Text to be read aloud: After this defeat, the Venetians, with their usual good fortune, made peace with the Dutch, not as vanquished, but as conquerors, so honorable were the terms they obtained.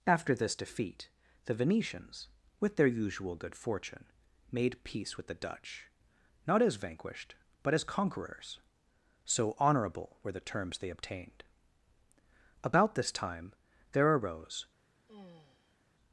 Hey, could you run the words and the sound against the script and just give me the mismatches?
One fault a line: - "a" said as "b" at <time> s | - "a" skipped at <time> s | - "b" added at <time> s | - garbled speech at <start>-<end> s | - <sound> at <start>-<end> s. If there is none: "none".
- "About this time there arose" added at 12.6 s
- sigh at 15.1-15.8 s